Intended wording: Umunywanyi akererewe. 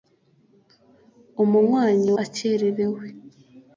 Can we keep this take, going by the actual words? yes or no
yes